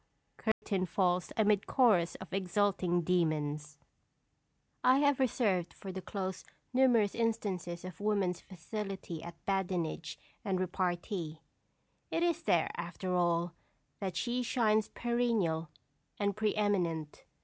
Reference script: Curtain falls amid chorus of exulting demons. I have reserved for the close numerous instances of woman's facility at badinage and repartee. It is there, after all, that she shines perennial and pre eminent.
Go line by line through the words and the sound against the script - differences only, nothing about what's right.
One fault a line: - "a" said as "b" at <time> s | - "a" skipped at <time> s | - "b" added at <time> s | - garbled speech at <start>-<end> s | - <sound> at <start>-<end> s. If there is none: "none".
- dropout at 0.5-0.6 s